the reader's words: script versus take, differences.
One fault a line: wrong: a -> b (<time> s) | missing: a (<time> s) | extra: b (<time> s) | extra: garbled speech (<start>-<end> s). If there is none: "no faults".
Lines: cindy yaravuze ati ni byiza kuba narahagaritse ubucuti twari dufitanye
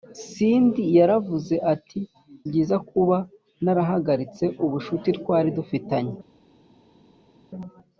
missing: ni (2.0 s)